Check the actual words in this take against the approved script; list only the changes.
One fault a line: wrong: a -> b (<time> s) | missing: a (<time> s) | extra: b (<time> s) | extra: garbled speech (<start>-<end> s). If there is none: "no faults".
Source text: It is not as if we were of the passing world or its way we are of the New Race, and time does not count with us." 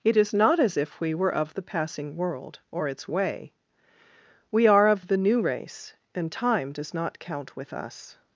no faults